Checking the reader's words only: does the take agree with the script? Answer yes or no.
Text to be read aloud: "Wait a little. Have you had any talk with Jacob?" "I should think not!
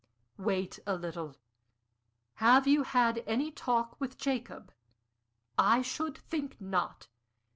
yes